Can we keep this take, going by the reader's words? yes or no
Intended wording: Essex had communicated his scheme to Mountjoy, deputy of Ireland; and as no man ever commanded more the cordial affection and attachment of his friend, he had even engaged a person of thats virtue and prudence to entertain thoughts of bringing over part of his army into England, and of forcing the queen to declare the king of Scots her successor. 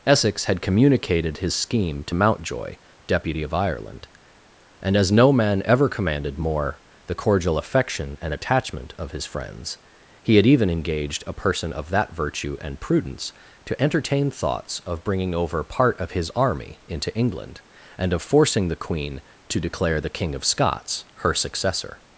no